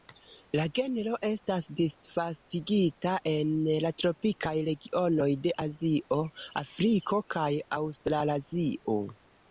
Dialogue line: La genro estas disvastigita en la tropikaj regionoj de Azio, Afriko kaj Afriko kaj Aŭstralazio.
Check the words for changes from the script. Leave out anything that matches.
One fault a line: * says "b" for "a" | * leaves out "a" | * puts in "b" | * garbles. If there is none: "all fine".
* leaves out "Afriko kaj"